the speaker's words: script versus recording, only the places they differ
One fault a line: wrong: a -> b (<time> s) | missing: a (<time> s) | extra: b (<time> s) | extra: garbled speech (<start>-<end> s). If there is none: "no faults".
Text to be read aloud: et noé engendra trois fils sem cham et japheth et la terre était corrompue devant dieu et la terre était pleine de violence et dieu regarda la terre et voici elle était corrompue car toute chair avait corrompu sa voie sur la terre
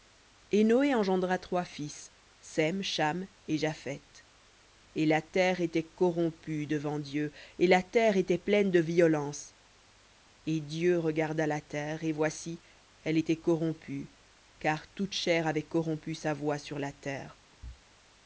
no faults